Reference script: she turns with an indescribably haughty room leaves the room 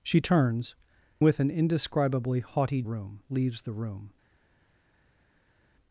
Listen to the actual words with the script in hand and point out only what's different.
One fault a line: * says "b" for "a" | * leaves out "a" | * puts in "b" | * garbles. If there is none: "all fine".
all fine